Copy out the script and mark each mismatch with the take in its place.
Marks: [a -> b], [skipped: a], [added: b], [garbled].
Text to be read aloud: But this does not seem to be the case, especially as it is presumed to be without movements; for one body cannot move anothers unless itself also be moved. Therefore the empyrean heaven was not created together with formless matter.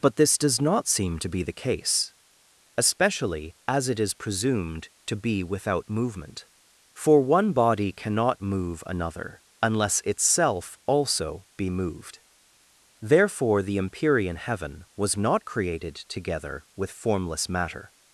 But this does not seem to be the case, especially as it is presumed to be without [movements; -> movement] for one body cannot move [anothers -> another] unless itself also be moved. Therefore the empyrean heaven was not created together with formless matter.